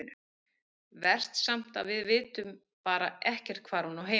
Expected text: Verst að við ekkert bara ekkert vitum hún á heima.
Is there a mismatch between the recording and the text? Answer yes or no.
yes